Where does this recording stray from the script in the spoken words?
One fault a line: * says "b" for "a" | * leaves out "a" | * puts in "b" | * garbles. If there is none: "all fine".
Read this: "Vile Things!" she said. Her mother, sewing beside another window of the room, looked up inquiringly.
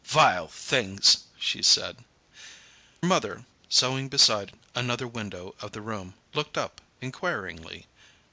* leaves out "Her"